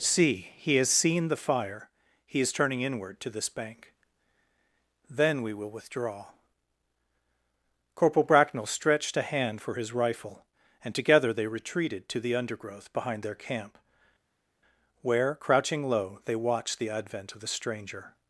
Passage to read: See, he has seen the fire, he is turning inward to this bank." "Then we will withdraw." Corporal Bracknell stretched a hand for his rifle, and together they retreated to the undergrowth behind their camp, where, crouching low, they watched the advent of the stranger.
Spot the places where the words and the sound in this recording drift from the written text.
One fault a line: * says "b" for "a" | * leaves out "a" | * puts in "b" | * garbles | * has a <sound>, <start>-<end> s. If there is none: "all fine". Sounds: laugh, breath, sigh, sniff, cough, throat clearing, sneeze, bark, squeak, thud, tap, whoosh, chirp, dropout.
all fine